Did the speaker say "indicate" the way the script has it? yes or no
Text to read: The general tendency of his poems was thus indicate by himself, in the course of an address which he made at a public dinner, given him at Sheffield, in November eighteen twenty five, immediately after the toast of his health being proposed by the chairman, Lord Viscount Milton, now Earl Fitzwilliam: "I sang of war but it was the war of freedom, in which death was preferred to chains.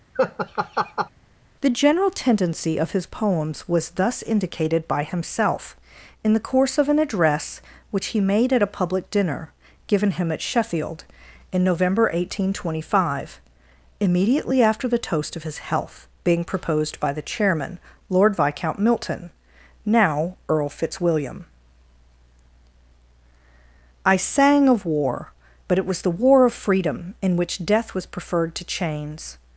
no